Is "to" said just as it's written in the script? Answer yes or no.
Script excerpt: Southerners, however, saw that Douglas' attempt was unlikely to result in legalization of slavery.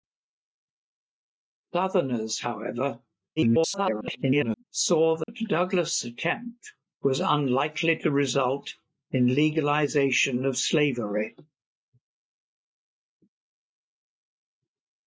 yes